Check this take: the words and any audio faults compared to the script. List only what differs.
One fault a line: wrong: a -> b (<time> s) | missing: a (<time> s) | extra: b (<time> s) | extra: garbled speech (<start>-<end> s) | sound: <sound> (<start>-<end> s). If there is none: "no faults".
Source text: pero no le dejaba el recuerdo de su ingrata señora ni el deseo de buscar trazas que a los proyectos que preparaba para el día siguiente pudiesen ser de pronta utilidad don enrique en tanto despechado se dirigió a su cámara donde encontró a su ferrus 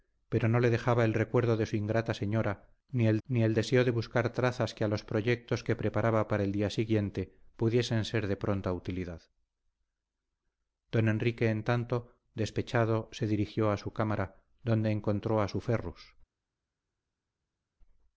extra: ni el (3.3 s)